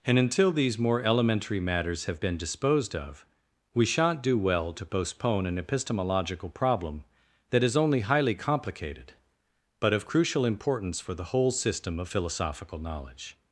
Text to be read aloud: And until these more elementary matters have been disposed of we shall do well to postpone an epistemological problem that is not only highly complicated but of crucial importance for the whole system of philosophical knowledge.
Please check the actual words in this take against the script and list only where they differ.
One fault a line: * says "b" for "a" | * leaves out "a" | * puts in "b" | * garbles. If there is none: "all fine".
* says "shan't" for "shall"
* leaves out "not"